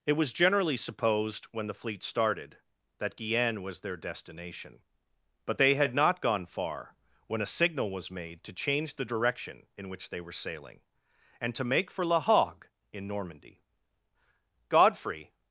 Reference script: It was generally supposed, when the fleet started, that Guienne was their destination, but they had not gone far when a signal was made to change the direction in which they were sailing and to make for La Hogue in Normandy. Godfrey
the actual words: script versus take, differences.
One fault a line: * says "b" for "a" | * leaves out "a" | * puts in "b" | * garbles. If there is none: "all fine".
all fine